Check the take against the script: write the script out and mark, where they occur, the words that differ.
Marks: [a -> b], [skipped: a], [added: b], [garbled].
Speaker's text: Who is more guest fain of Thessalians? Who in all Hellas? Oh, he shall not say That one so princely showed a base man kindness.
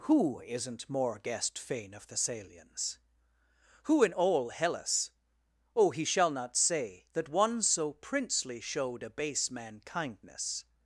Who [is -> isn't] more guest fain of Thessalians? Who in all Hellas? Oh, he shall not say That one so princely showed a base man kindness.